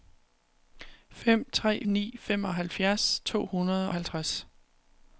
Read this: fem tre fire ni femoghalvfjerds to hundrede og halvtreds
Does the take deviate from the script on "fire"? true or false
true